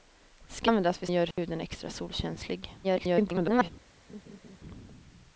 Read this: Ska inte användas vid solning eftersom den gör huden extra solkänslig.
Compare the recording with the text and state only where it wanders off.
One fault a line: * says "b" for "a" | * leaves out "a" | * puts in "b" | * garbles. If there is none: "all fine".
* leaves out "inte"
* leaves out "solning eftersom den"
* garbles